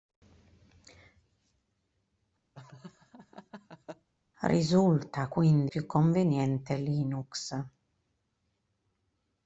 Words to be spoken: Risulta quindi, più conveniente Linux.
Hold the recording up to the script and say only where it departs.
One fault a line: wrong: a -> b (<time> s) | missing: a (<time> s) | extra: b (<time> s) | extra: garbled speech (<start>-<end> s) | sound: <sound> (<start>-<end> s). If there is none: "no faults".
sound: laugh (2.5-4.1 s)